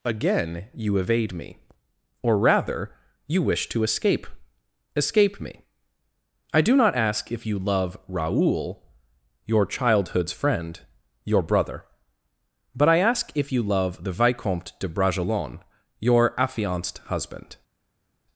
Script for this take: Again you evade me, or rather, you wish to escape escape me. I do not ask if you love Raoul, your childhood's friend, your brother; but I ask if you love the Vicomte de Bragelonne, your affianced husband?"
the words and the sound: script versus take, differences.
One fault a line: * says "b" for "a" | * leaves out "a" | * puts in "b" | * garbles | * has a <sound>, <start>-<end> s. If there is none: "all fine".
all fine